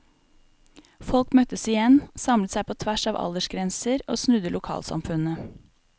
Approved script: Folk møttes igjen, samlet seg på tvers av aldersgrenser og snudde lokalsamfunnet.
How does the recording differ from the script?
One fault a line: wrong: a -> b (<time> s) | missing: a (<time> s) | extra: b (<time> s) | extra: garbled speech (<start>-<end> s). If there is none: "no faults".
no faults